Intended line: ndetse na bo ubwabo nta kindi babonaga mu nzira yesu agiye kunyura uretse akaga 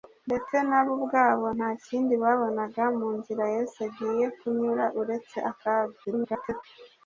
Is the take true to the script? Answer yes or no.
no